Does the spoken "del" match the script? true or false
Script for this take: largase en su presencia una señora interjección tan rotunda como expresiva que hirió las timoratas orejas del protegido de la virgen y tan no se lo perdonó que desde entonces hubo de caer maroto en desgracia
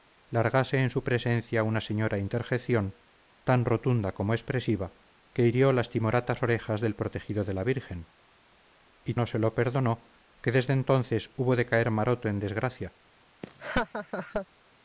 true